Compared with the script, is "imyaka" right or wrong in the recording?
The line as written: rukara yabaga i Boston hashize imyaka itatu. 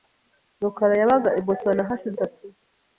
wrong